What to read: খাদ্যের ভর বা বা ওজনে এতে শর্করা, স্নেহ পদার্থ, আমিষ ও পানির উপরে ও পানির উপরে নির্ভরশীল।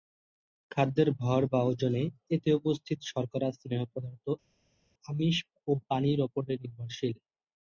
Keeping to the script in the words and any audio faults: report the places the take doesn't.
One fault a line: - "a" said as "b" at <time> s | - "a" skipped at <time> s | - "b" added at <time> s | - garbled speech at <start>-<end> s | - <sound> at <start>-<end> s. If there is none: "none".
- "বা" skipped at 1.6 s
- "উপস্থিত" added at 2.6 s
- "ও পানির উপরে" skipped at 6.5 s